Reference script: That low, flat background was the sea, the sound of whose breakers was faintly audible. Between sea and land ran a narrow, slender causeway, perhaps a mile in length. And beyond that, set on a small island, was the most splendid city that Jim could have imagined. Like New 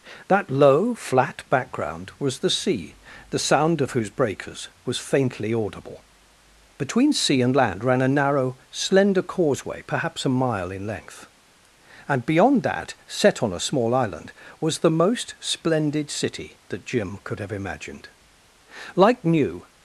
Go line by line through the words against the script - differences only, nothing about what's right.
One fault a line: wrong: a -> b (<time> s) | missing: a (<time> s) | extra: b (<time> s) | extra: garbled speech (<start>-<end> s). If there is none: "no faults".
no faults